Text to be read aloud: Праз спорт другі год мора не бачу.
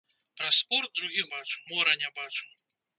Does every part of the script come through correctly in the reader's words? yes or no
no